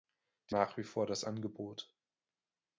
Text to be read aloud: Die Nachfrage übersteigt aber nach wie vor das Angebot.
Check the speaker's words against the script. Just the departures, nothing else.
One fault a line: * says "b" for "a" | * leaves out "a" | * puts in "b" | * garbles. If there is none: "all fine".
* leaves out "Nachfrage übersteigt aber"